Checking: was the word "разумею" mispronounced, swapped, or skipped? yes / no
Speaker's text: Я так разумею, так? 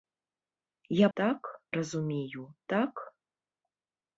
no